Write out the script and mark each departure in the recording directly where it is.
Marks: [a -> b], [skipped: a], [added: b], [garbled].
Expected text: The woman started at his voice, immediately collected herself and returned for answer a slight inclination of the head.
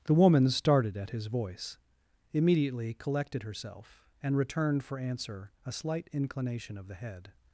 The woman started at his voice, immediately collected herself and returned for answer a slight inclination of the head.